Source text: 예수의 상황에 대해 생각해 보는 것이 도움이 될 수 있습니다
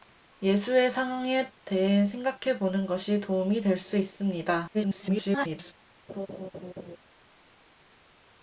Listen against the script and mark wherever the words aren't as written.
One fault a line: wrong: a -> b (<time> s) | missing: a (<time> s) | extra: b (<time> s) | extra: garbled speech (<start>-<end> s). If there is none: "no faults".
extra: garbled speech (4.7-5.7 s)